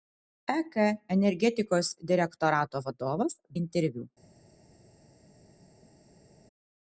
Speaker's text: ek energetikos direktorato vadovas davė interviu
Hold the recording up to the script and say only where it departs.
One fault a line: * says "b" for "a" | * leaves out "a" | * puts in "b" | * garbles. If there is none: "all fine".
* leaves out "davė"